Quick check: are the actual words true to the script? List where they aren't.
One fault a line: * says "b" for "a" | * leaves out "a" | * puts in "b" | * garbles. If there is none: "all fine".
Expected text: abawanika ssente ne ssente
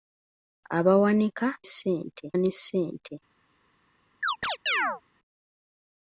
all fine